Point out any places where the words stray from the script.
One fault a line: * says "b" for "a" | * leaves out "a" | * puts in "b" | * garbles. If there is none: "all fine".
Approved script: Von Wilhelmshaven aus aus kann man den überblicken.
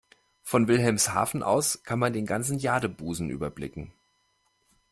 * leaves out "aus"
* puts in "ganzen Jadebusen"